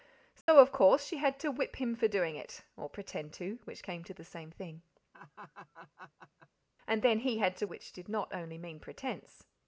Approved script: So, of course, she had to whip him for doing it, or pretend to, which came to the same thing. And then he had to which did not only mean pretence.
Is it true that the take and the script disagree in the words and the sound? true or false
true